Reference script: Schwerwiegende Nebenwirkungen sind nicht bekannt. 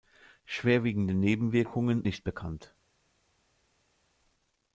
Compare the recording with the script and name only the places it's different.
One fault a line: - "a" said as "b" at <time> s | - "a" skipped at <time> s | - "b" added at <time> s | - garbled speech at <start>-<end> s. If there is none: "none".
- "sind" skipped at 2.0 s